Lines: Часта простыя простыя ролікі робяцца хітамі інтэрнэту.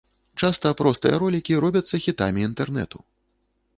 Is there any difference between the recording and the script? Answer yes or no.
yes